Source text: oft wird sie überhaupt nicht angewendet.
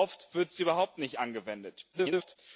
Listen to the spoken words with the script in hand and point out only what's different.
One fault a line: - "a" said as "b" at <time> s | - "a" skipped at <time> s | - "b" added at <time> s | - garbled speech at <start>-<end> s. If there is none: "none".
- garbled speech at 1.9-2.4 s